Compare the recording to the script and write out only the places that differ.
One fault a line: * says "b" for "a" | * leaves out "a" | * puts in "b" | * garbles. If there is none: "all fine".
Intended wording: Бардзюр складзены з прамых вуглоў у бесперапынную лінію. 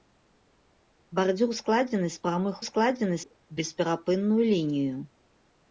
* says "складзены" for "вуглоў"